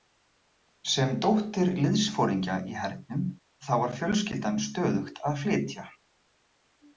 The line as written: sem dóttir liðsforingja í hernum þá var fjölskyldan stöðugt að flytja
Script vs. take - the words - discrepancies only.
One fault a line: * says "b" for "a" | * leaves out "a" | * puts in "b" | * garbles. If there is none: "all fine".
all fine